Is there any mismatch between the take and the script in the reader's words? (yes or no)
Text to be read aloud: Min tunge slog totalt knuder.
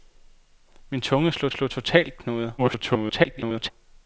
yes